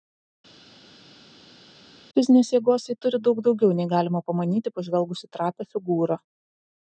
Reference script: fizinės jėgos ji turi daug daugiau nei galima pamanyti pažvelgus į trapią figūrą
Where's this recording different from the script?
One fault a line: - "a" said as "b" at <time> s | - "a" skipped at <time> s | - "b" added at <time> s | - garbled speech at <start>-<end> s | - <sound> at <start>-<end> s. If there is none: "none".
none